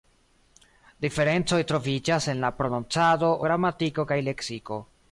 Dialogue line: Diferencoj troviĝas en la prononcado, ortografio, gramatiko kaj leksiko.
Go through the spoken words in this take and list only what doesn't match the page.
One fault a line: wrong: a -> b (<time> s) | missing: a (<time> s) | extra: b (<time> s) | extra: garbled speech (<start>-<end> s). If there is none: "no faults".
missing: ortografio (3.3 s)